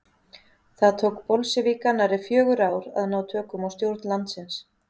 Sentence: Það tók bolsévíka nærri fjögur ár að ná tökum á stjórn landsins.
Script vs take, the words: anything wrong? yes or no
no